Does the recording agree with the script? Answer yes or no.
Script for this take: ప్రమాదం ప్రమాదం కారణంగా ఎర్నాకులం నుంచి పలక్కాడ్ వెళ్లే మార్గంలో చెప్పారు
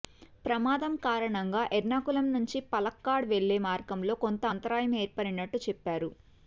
no